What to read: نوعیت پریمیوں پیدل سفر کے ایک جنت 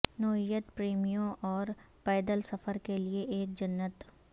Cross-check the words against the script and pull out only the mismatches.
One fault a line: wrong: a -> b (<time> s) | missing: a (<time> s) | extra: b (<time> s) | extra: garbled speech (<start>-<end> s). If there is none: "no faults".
extra: اور (1.4 s)
extra: لئے (3.0 s)